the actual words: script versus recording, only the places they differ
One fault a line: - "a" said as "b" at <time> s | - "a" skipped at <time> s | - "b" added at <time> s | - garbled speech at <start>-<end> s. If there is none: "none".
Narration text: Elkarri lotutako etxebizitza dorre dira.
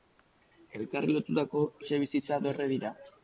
none